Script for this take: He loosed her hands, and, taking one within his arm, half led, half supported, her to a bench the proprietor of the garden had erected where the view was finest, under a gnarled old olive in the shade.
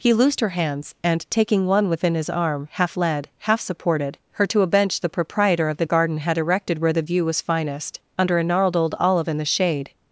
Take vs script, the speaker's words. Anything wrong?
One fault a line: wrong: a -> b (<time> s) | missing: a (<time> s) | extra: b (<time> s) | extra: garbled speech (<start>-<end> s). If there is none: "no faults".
no faults